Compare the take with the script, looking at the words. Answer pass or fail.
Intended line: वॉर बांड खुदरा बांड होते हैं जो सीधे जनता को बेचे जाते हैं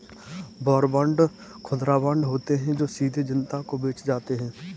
pass